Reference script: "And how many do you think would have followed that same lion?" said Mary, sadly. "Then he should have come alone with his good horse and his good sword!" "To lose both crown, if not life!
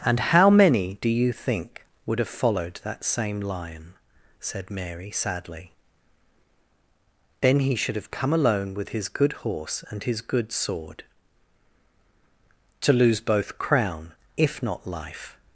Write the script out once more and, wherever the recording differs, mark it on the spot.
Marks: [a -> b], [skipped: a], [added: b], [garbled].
"And how many do you think would have followed that same lion?" said Mary, sadly. "Then he should have come alone with his good horse and his good sword!" "To lose both crown, if not life!